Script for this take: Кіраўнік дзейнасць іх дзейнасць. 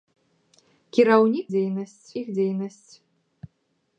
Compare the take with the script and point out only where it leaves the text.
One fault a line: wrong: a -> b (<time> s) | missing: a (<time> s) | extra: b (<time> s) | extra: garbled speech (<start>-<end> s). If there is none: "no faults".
no faults